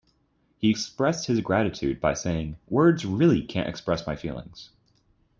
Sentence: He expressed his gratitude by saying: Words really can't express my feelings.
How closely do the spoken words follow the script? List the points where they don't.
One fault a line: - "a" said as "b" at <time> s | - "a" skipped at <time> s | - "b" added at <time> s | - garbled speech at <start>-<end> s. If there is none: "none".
none